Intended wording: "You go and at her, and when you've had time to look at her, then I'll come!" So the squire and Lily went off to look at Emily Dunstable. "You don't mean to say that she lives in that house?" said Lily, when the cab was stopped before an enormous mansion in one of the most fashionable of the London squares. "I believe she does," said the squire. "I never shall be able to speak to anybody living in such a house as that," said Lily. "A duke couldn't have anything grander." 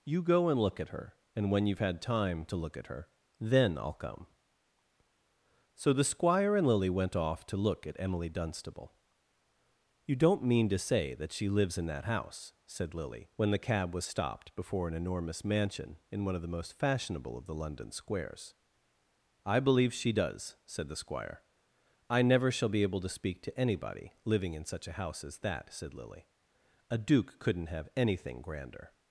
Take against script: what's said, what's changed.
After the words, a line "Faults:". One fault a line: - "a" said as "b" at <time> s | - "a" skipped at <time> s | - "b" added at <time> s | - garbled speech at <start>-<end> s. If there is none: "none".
"You go and look at her, and when you've had time to look at her, then I'll come!" So the squire and Lily went off to look at Emily Dunstable. "You don't mean to say that she lives in that house?" said Lily, when the cab was stopped before an enormous mansion in one of the most fashionable of the London squares. "I believe she does," said the squire. "I never shall be able to speak to anybody living in such a house as that," said Lily. "A duke couldn't have anything grander."
Faults:
- "look" added at 0.6 s